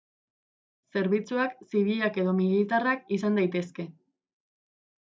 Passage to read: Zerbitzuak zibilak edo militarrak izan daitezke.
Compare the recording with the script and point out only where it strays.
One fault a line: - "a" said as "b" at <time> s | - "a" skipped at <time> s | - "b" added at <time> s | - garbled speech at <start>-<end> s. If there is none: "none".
none